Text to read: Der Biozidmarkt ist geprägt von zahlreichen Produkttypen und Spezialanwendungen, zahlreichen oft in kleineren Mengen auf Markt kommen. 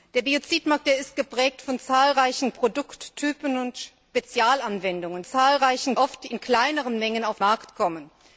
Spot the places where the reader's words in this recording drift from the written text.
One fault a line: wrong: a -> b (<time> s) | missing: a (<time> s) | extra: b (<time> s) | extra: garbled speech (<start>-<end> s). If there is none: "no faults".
no faults